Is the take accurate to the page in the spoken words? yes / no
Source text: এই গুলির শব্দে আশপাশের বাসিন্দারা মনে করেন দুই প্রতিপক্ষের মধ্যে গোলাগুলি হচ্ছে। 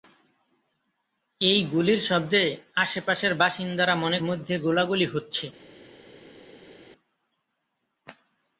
no